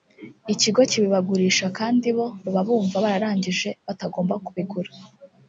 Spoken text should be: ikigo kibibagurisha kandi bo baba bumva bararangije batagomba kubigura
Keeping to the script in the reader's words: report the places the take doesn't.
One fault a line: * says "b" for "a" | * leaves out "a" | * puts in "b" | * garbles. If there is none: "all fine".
all fine